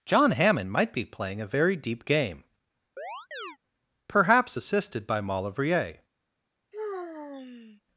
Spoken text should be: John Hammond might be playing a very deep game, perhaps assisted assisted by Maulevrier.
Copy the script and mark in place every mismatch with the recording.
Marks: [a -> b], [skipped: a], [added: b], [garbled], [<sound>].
John Hammond might be playing a very deep game, [chirp] perhaps assisted [skipped: assisted] by Maulevrier. [sigh]